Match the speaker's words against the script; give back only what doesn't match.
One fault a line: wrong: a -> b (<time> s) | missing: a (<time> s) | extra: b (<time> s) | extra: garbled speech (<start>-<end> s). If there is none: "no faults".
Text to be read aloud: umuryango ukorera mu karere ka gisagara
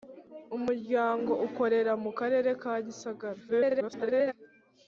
extra: garbled speech (3.5-4.3 s)